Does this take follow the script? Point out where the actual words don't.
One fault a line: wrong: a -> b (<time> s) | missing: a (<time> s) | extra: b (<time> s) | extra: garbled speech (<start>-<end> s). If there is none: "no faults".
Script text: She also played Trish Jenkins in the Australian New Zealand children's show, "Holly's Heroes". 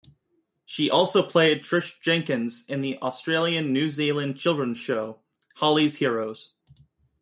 no faults